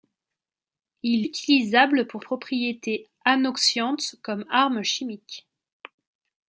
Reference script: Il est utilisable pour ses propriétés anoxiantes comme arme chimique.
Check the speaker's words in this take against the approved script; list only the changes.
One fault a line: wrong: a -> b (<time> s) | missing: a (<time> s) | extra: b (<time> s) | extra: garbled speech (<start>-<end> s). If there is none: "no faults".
missing: est (1.3 s)
missing: ses (2.2 s)